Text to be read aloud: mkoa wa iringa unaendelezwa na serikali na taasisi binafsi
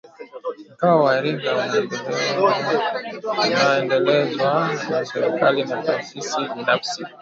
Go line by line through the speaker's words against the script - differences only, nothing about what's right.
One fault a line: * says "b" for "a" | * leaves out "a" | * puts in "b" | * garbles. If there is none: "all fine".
all fine